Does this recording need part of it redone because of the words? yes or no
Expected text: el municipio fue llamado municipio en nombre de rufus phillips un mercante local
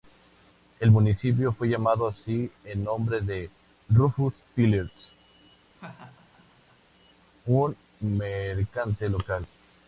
yes